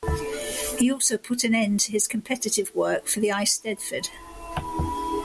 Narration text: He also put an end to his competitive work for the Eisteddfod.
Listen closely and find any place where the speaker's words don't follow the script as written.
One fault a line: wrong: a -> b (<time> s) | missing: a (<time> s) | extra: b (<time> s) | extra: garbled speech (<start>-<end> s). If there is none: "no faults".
no faults